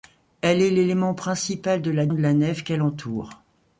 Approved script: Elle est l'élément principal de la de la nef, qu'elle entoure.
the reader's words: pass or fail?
pass